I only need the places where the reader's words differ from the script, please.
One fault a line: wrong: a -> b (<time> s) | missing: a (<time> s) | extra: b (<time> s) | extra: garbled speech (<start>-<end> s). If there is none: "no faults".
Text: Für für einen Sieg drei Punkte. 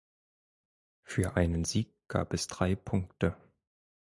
missing: für (1.4 s)
extra: gab es (2.1 s)